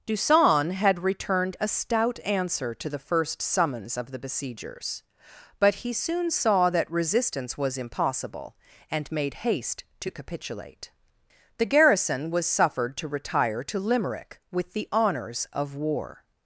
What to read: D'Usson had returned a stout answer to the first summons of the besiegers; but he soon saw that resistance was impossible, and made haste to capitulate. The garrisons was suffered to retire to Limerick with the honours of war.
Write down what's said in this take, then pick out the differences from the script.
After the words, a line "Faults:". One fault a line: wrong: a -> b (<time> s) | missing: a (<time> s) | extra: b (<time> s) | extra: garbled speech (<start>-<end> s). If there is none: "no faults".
D'Usson had returned a stout answer to the first summons of the besiegers; but he soon saw that resistance was impossible, and made haste to capitulate. The garrison was suffered to retire to Limerick with the honours of war.
Faults:
wrong: garrisons -> garrison (11.7 s)